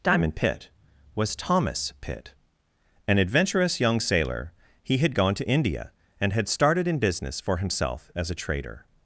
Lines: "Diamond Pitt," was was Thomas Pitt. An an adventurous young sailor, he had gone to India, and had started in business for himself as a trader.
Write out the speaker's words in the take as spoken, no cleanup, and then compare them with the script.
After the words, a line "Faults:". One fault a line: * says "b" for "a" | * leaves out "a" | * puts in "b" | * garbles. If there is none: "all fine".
"Diamond Pitt," was Thomas Pitt. An adventurous young sailor, he had gone to India, and had started in business for himself as a trader.
Faults:
* leaves out "was"
* leaves out "an"